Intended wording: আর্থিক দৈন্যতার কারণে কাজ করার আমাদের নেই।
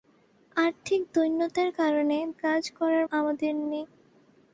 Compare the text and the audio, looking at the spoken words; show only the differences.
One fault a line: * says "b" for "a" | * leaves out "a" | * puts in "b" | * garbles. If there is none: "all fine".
all fine